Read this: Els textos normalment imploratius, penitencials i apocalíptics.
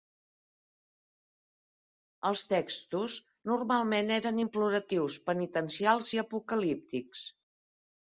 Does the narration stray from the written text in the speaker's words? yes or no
yes